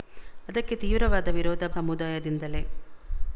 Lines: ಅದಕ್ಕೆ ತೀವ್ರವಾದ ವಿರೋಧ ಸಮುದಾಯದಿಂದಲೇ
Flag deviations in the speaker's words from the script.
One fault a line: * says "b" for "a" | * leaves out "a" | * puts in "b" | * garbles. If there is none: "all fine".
all fine